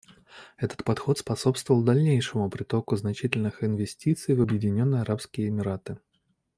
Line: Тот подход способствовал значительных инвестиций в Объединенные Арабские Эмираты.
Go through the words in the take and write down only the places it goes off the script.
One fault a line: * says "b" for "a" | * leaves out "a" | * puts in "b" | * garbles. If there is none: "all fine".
* says "Этот" for "Тот"
* puts in "дальнейшему притоку"